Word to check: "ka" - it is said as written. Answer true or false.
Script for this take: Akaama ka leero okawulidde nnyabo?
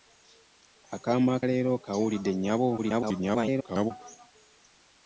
false